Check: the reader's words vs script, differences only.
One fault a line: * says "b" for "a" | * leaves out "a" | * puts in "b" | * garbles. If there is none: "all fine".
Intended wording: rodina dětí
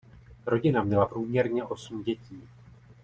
* puts in "měla průměrně osm"